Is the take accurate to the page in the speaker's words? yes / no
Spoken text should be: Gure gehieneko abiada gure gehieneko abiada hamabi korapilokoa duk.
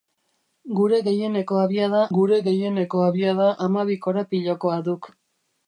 yes